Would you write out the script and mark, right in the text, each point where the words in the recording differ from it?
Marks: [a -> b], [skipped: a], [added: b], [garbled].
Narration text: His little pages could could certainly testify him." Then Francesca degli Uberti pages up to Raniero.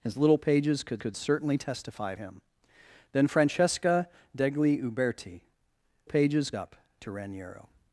His little pages could could certainly testify him." Then Francesca degli Uberti pages up to Raniero.